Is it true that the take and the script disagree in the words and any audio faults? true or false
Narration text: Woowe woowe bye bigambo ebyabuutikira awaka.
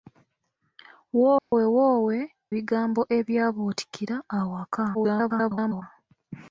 true